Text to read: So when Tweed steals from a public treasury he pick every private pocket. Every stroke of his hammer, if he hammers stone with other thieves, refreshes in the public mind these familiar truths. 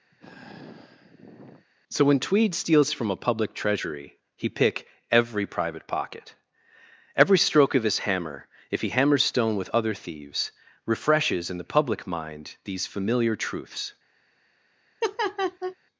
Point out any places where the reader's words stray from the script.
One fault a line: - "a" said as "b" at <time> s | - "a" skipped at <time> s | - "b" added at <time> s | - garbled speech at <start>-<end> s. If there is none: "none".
none